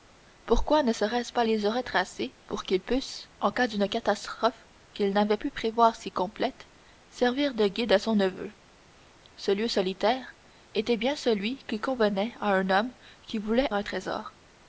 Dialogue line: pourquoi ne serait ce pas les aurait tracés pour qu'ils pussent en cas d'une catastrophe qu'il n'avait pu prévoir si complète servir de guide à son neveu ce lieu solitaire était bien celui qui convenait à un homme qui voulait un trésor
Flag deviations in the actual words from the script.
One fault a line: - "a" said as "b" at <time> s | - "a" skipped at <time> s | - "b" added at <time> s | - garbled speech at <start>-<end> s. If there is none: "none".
none